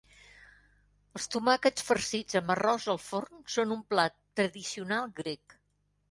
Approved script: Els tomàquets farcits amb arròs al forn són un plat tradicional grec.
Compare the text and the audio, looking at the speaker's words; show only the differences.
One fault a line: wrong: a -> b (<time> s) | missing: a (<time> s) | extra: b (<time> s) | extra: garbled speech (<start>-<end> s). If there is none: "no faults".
no faults